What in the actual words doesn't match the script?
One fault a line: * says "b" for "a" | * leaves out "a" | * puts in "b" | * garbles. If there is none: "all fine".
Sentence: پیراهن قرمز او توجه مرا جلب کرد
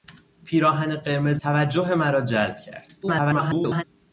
* leaves out "او"
* garbles